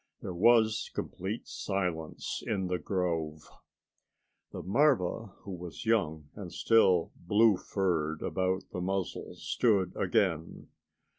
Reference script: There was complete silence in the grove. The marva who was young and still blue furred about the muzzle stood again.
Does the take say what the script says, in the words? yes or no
yes